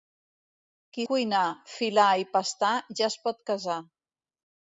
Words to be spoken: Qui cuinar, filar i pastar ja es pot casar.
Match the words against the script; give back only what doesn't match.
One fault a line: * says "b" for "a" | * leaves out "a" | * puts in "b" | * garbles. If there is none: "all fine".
all fine